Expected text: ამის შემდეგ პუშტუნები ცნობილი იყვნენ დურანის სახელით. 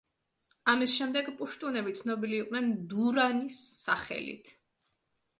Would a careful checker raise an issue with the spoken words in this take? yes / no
no